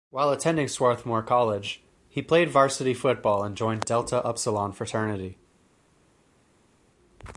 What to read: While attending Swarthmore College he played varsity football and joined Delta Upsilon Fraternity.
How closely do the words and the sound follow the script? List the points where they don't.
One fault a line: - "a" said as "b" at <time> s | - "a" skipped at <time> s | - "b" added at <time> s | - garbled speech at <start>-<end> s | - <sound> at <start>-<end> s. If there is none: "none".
none